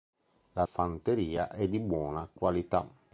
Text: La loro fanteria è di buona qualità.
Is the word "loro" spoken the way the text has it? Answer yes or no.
no